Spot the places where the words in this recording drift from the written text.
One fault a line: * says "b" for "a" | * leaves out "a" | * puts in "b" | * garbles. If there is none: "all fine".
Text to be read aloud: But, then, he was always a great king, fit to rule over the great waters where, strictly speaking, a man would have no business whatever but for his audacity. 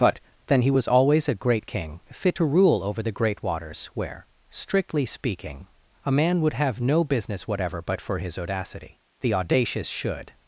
* puts in "The audacious should"